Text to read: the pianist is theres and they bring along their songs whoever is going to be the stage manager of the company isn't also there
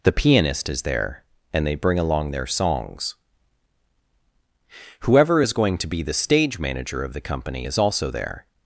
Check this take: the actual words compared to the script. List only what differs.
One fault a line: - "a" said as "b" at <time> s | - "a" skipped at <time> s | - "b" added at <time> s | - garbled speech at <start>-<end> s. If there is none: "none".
- "theres" said as "there" at 0.8 s
- "isn't" said as "is" at 7.6 s